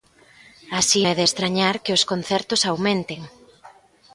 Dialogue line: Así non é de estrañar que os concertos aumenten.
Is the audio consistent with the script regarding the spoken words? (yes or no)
no